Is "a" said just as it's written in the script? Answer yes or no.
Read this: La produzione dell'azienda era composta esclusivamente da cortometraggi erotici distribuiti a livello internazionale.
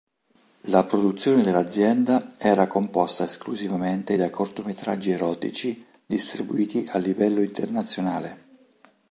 yes